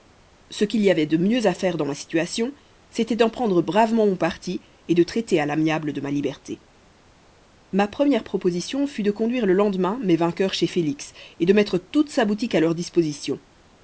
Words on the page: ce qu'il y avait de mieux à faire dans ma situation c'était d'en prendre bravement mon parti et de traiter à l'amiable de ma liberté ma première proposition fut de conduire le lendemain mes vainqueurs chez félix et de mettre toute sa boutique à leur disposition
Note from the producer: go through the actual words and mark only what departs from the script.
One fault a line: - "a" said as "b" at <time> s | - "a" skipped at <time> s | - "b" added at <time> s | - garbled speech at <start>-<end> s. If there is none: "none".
none